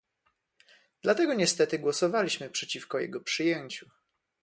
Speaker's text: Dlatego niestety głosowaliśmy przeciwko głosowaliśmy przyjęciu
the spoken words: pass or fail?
fail